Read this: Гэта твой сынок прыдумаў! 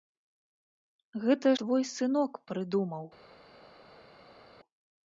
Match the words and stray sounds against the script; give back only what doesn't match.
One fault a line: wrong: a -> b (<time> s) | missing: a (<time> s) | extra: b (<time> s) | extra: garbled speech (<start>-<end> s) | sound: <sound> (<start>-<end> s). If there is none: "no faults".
no faults